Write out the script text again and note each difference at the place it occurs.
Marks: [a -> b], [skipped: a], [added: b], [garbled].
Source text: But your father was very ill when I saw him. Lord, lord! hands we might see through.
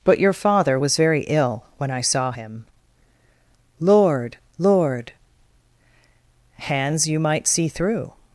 But your father was very ill when I saw him. Lord, lord! hands [we -> you] might see through.